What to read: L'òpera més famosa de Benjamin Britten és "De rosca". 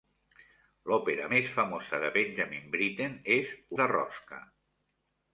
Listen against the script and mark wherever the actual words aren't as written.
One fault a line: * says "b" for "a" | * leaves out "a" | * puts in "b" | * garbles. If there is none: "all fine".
all fine